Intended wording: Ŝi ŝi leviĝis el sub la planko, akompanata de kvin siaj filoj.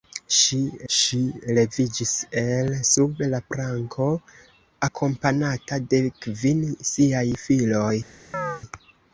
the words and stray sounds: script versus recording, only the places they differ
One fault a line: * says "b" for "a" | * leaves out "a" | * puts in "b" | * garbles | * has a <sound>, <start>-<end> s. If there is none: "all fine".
* has a chirp, 8.3-8.6 s